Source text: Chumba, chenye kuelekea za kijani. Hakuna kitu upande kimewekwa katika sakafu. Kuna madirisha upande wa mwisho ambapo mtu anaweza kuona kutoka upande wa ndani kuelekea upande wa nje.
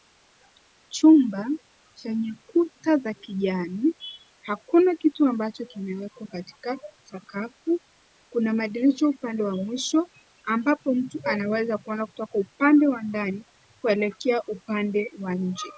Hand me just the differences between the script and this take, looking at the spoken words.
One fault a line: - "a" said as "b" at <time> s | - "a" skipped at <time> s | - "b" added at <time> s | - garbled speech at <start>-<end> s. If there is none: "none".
- "kuelekea" said as "kuta" at 2.5 s
- "upande" said as "ambacho" at 5.3 s